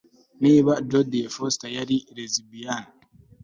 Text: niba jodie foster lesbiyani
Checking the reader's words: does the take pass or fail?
fail